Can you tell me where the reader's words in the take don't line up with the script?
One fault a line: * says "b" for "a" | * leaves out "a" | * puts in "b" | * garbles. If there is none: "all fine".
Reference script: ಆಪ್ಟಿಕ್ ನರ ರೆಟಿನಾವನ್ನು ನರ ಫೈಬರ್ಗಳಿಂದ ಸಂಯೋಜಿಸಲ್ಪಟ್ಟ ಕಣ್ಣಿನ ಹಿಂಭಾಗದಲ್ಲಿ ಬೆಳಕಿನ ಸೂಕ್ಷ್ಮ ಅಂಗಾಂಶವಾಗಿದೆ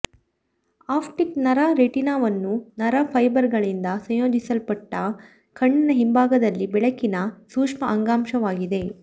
all fine